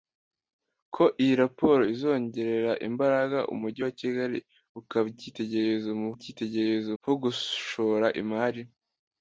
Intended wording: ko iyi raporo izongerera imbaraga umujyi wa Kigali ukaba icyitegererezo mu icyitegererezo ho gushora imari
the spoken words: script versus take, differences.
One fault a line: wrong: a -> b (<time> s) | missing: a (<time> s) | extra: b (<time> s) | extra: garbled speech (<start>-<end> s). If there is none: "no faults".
no faults